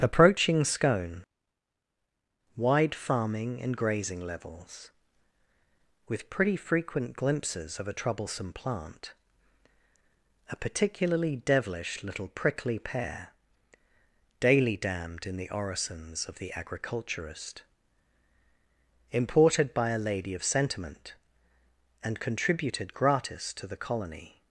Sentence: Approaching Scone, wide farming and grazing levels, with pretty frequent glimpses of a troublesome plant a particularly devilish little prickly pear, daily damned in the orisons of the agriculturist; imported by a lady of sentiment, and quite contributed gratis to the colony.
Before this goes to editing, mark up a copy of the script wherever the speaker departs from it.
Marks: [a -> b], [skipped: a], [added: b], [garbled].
Approaching Scone, wide farming and grazing levels, with pretty frequent glimpses of a troublesome plant a particularly devilish little prickly pear, daily damned in the orisons of the agriculturist; imported by a lady of sentiment, and [skipped: quite] contributed gratis to the colony.